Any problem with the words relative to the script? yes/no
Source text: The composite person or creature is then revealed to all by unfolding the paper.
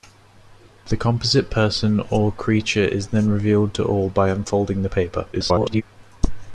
yes